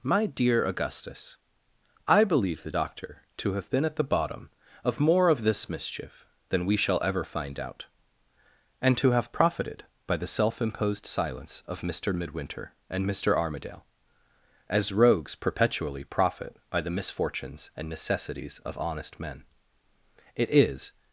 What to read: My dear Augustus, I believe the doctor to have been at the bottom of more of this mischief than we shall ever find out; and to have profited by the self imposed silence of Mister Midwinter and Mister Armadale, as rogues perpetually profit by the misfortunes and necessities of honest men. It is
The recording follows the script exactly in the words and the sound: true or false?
true